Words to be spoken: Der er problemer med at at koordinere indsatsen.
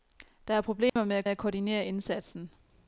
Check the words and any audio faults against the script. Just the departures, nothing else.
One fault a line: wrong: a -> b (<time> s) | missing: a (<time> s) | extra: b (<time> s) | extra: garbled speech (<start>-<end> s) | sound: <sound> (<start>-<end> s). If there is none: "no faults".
sound: dropout (0.9-1.0 s)